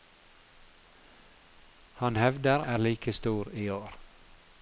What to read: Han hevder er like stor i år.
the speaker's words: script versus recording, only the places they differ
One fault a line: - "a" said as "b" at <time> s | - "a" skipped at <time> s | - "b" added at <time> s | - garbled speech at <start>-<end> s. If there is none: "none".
none